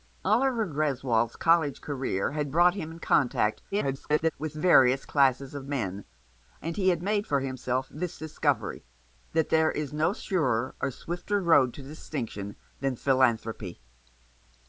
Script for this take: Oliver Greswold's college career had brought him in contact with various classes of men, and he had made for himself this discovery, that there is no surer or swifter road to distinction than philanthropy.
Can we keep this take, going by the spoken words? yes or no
no